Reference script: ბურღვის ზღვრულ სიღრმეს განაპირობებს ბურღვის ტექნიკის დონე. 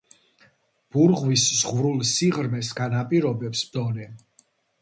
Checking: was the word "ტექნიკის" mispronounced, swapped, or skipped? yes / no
yes